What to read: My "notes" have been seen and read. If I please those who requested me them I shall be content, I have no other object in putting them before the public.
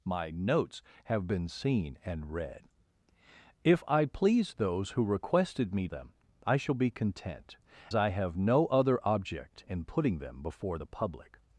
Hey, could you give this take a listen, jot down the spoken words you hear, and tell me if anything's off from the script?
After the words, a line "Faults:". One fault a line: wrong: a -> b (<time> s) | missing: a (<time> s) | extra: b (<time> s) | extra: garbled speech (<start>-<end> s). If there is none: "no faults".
My "notes" have been seen and read. If I please those who requested me them I shall be content, I have no other object in putting them before the public.
Faults:
no faults